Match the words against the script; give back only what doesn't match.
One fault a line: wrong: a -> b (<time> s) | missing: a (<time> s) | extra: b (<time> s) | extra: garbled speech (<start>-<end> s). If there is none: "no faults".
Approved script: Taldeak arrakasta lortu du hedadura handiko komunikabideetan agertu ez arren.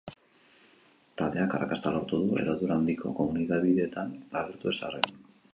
no faults